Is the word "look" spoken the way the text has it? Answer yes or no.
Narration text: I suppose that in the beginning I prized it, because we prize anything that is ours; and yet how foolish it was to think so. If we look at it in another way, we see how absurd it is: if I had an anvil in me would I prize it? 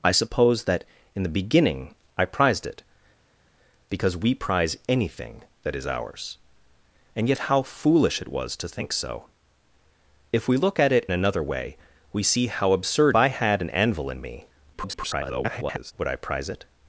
yes